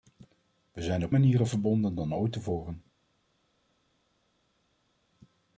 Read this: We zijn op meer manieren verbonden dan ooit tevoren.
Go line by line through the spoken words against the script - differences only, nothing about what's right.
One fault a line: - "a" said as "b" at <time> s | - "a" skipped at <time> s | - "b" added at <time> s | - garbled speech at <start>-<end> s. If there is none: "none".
- "meer" skipped at 1.1 s